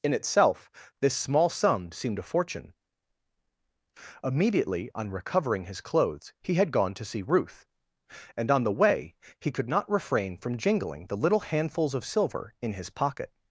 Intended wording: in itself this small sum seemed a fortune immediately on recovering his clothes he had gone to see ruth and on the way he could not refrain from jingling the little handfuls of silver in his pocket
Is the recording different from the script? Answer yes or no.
no